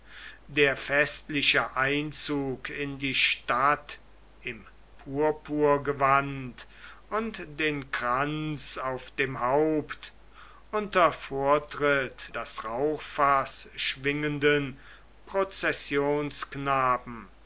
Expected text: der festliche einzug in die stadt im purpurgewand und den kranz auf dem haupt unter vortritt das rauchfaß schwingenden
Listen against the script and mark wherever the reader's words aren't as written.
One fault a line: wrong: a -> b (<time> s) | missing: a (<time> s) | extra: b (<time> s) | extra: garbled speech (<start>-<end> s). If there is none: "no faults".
no faults